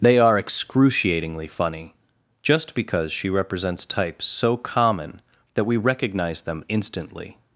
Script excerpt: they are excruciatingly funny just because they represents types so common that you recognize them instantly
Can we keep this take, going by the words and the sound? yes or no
no